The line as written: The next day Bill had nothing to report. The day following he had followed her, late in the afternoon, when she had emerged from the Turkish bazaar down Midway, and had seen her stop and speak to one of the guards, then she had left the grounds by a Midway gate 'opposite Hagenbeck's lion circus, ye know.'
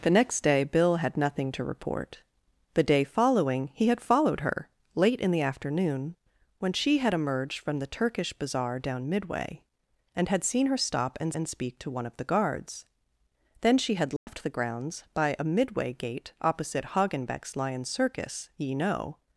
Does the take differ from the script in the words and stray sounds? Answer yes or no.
yes